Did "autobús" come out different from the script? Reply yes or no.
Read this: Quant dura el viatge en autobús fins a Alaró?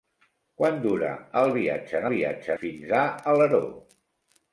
yes